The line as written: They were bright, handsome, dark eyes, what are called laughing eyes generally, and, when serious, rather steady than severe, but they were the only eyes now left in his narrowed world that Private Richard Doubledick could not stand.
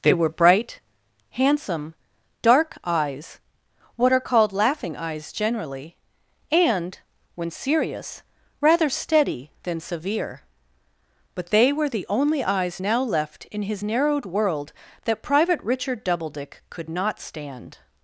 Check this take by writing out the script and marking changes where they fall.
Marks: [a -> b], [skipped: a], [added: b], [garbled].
They were bright, handsome, dark eyes, what are called laughing eyes generally, and, when serious, rather steady than severe, but they were the only eyes now left in his narrowed world that Private Richard Doubledick could not stand.